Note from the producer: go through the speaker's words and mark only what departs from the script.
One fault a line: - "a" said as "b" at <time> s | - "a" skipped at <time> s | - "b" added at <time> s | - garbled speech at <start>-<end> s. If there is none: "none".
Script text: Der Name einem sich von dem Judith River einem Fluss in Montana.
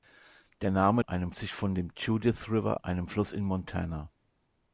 none